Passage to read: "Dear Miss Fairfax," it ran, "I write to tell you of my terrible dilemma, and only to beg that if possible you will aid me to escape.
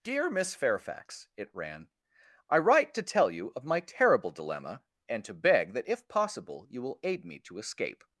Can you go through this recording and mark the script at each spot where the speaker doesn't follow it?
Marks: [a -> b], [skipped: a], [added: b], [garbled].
"Dear Miss Fairfax," it ran, "I write to tell you of my terrible dilemma, and [skipped: only] to beg that if possible you will aid me to escape.